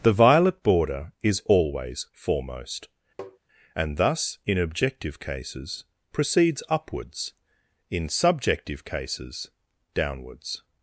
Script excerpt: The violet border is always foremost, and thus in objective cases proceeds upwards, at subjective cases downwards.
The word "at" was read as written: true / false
false